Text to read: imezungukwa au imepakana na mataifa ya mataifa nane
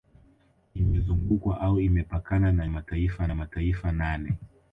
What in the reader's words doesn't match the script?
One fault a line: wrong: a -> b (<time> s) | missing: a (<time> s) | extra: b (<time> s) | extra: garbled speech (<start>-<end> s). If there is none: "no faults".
no faults